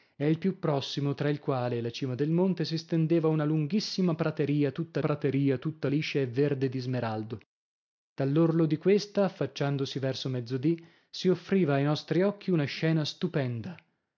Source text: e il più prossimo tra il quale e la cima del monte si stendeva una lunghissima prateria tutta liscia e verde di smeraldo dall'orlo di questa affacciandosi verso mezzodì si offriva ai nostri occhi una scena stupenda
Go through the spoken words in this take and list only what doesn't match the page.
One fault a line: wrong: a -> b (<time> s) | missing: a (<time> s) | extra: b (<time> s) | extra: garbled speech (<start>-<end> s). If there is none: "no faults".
extra: prateria tutta (5.0 s)